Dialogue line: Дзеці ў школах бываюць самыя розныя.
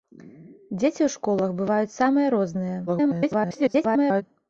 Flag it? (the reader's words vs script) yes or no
yes